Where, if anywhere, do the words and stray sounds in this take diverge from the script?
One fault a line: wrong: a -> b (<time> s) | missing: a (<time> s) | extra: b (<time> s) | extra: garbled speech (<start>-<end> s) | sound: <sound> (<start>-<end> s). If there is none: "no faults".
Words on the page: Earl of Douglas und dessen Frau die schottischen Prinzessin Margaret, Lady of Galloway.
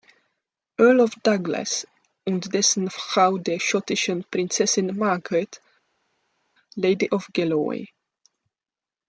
wrong: die -> der (3.4 s)